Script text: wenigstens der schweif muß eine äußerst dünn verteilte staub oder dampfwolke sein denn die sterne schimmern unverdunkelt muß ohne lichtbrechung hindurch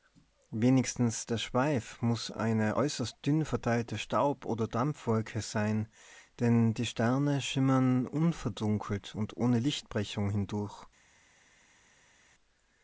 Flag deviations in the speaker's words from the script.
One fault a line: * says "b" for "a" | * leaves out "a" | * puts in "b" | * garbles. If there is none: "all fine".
* says "und" for "muß"